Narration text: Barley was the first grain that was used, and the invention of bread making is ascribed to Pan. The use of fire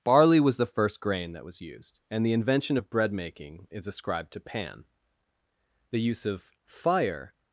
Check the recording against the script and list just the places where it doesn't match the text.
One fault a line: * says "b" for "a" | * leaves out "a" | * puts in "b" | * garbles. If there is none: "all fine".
all fine